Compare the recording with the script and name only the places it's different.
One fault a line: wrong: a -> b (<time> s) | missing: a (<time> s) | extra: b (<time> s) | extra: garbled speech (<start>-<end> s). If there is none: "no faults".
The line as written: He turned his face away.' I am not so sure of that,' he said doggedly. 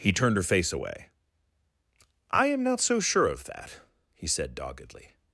wrong: his -> her (0.4 s)